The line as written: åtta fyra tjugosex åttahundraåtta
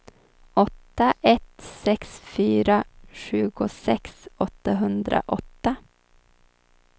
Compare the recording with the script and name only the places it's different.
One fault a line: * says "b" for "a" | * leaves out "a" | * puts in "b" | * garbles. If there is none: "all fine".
* puts in "ett sex"